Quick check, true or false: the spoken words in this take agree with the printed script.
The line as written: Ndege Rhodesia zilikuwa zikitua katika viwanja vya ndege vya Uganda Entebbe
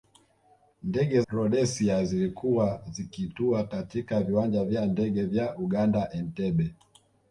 true